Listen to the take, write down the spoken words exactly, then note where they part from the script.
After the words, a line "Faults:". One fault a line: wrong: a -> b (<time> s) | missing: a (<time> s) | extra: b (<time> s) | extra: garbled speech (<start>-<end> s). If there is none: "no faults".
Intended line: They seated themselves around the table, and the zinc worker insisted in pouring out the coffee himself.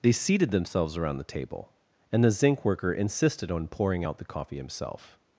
They seated themselves around the table, and the zinc worker insisted on pouring out the coffee himself.
Faults:
wrong: in -> on (3.5 s)